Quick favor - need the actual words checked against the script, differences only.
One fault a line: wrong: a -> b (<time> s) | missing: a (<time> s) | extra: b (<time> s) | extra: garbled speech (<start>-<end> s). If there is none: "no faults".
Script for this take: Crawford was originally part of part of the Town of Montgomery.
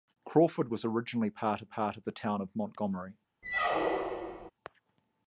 no faults